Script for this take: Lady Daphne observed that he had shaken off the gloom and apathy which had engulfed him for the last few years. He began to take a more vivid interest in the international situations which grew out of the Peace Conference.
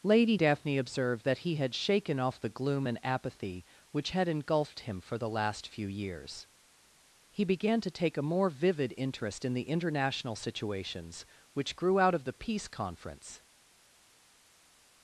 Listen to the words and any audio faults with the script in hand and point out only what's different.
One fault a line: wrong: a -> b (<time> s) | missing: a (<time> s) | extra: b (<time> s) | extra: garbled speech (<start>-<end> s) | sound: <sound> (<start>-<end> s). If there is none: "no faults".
no faults